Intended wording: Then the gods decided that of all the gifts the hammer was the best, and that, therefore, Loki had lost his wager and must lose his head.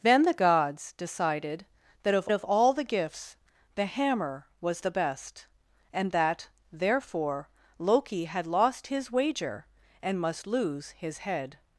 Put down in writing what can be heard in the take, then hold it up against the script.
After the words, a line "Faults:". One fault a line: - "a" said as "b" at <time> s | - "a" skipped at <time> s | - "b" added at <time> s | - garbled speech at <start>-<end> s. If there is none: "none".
Then the gods decided that of of all the gifts the hammer was the best, and that, therefore, Loki had lost his wager and must lose his head.
Faults:
- "of" added at 2.3 s